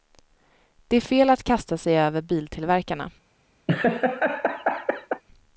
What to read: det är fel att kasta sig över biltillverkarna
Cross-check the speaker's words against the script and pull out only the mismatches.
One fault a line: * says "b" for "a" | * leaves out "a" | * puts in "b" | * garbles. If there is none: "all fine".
all fine